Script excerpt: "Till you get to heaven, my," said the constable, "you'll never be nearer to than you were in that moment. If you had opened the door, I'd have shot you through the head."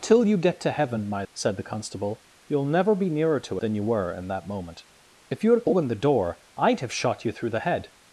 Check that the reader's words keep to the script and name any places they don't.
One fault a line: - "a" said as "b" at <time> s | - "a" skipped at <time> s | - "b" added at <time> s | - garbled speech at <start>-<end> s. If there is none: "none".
none